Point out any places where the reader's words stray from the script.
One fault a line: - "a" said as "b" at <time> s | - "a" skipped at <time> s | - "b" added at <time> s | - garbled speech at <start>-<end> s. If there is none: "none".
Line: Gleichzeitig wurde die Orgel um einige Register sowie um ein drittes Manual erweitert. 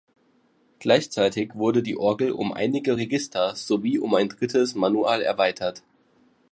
none